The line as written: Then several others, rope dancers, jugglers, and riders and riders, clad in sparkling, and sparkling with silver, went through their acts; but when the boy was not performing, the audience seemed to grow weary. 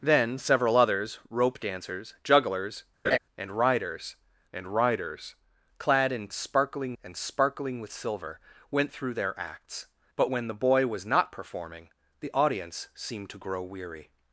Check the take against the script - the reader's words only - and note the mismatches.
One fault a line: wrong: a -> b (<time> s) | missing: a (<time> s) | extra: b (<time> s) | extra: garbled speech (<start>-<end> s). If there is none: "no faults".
no faults